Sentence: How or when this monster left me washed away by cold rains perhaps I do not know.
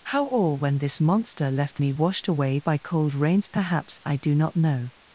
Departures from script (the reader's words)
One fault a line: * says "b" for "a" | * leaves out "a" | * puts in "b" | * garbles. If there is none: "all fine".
all fine